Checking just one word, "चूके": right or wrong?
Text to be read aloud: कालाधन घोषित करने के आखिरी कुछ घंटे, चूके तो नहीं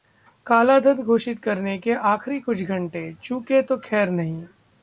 right